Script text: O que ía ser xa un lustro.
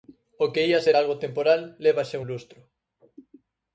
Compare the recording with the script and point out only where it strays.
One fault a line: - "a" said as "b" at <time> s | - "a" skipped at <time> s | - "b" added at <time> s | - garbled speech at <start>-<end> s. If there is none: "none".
- "algo temporal leva" added at 1.0 s